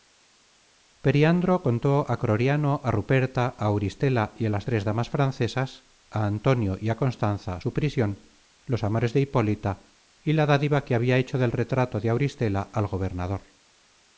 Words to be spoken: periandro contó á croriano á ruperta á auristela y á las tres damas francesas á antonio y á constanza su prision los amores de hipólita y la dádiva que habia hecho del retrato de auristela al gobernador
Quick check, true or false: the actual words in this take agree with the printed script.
true